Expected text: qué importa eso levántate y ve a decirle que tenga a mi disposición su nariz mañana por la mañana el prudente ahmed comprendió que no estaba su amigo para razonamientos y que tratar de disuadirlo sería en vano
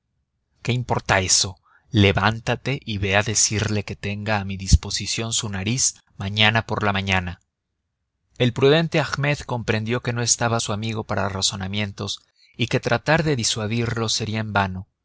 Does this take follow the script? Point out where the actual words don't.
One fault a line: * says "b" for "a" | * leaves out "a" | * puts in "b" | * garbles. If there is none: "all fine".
all fine